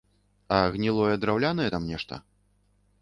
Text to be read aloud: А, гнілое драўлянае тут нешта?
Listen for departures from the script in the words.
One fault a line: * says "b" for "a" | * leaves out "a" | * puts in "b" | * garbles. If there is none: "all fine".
* says "там" for "тут"